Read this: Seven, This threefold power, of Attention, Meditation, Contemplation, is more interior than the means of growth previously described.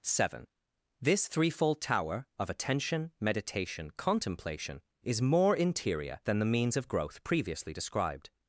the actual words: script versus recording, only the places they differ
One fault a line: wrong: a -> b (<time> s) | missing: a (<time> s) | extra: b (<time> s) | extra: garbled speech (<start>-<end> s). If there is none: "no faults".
wrong: power -> tower (1.8 s)